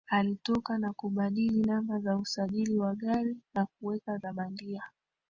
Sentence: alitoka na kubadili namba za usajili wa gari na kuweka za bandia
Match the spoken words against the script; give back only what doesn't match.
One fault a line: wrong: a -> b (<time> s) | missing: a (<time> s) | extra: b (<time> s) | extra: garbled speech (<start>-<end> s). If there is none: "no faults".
no faults